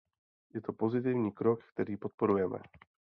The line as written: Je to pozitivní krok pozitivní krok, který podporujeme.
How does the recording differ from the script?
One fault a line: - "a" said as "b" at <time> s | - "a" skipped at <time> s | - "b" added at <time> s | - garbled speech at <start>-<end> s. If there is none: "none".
- "pozitivní krok" skipped at 1.6 s